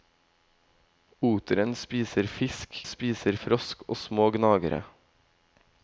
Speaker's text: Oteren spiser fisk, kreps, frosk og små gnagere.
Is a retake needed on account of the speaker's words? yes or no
yes